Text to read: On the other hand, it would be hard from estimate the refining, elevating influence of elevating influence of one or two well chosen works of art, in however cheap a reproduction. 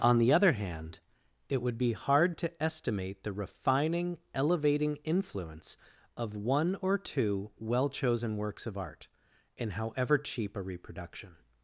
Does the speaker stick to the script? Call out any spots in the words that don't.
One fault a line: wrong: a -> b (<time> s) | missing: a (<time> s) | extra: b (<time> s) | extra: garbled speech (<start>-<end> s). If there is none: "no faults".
wrong: from -> to (2.4 s)
missing: elevating influence of (6.3 s)